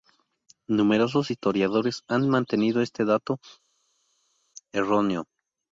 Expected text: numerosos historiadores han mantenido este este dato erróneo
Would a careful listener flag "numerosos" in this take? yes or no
no